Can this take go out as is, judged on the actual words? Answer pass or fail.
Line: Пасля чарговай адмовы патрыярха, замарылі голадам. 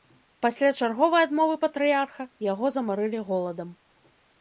fail